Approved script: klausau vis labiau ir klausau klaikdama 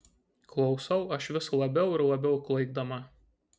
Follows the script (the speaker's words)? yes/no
no